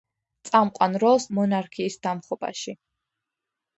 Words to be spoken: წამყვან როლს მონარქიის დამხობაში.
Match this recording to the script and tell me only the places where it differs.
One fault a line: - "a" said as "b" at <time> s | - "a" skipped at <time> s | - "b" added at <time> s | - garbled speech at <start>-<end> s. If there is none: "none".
none